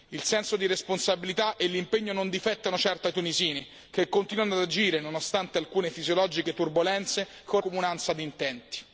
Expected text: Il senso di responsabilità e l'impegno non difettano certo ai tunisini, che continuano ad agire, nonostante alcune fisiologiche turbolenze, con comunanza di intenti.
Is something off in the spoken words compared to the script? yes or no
no